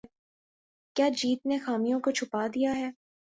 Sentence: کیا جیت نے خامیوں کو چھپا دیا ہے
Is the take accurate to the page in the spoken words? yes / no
yes